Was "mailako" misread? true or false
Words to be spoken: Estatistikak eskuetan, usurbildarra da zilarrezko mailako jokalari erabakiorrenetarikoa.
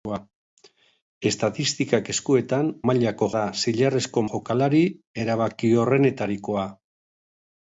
true